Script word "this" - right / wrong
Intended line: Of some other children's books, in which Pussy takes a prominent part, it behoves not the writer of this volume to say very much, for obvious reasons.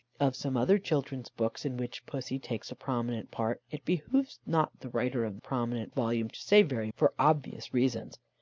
wrong